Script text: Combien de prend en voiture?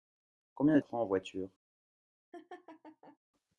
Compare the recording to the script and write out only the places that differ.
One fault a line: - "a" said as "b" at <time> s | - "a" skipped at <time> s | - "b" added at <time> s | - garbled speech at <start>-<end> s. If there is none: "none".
none